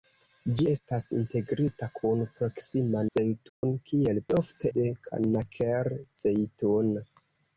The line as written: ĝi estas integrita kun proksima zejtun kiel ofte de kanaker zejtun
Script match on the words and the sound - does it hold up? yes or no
no